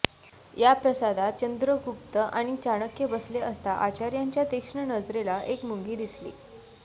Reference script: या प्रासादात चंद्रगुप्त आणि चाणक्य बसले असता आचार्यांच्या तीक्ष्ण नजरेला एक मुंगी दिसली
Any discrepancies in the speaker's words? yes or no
no